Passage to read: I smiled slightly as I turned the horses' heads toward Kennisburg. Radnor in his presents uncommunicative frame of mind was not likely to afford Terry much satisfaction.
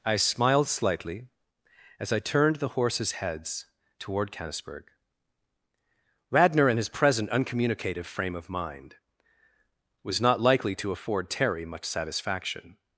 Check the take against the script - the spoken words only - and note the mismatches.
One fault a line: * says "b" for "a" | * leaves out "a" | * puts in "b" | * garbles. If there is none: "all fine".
* says "present" for "presents"